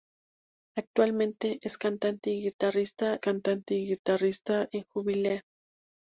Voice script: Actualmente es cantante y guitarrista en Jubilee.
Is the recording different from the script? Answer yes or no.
yes